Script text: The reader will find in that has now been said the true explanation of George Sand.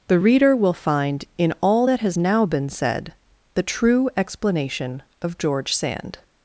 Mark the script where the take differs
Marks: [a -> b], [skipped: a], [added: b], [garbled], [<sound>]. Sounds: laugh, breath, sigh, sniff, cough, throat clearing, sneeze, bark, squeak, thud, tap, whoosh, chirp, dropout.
The reader will find in [added: all] that has now been said the true explanation of George Sand.